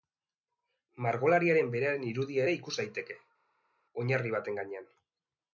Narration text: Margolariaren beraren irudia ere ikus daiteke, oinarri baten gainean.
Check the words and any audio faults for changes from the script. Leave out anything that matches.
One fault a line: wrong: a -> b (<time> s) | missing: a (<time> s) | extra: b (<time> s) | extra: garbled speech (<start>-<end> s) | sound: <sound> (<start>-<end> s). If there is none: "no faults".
no faults